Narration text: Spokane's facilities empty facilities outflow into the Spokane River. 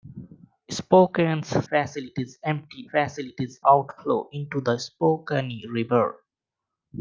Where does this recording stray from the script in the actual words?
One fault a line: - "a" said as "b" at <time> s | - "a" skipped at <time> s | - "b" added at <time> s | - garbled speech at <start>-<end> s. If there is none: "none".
none